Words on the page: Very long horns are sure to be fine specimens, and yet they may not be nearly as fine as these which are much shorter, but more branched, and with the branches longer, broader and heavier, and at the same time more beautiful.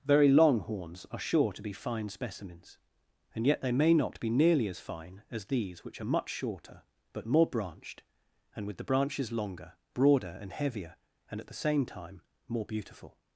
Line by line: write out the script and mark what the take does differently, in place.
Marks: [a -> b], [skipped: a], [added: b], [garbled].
Very long horns are sure to be fine specimens, and yet they may not be nearly as fine as these which are much shorter, but more branched, and with the branches longer, broader and heavier, and at the same time more beautiful.